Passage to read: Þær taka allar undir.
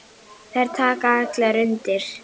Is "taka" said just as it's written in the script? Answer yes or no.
yes